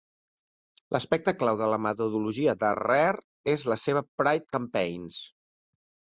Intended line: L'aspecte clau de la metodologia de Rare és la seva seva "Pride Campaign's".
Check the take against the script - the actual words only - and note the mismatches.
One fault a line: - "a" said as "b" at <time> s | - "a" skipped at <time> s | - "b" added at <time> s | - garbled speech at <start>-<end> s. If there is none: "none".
- "seva" skipped at 4.0 s